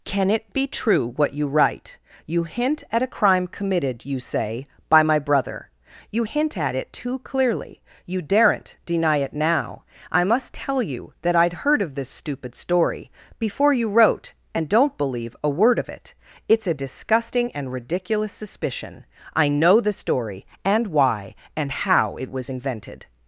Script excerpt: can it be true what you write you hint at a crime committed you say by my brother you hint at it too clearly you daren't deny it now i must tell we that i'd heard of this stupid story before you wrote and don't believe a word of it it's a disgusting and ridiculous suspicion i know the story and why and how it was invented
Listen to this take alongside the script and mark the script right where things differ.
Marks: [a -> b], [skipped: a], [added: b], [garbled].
can it be true what you write you hint at a crime committed you say by my brother you hint at it too clearly you daren't deny it now i must tell [we -> you] that i'd heard of this stupid story before you wrote and don't believe a word of it it's a disgusting and ridiculous suspicion i know the story and why and how it was invented